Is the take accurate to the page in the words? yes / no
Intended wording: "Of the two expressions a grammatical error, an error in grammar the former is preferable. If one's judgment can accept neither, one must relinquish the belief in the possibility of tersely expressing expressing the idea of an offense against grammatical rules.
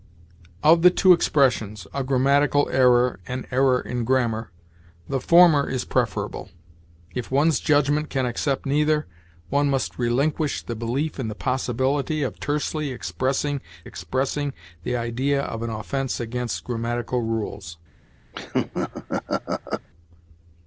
yes